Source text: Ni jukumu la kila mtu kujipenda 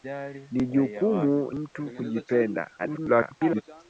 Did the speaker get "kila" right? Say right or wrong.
wrong